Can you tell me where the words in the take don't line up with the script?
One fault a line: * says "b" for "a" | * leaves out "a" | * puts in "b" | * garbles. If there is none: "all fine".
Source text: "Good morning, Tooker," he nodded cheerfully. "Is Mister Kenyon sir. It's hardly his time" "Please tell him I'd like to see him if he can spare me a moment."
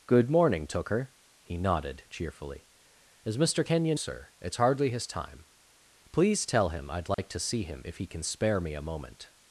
all fine